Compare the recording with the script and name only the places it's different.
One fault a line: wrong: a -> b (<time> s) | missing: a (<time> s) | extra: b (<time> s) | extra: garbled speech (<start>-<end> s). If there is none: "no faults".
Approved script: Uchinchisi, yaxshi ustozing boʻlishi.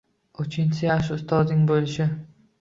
no faults